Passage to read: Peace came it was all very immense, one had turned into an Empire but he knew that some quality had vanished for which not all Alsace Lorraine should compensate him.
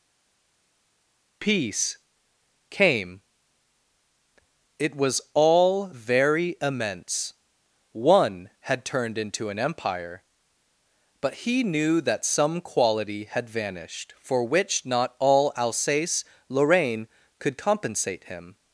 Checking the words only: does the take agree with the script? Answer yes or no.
no